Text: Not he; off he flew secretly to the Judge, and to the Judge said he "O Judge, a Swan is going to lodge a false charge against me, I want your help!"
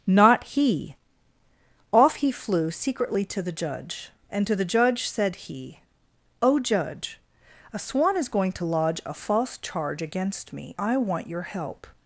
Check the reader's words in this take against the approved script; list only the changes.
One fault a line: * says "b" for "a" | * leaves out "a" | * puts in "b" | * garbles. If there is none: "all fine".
all fine